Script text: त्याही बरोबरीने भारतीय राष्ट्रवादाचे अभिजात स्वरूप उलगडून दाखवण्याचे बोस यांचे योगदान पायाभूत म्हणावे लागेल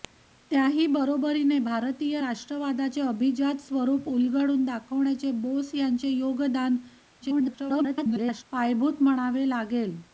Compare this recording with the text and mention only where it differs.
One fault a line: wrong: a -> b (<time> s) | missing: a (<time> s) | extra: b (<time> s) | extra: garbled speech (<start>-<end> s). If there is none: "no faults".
extra: garbled speech (7.2-8.4 s)